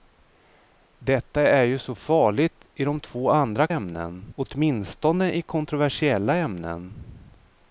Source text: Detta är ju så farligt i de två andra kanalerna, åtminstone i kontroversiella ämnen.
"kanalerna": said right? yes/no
no